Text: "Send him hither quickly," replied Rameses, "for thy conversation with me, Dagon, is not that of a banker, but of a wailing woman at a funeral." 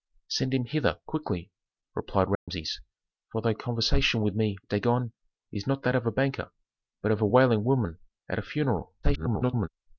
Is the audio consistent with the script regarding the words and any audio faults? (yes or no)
no